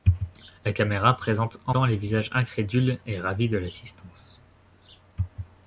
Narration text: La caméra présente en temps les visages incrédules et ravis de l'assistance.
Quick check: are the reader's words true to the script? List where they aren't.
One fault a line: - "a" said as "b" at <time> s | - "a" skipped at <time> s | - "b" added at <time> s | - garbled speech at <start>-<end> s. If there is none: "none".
none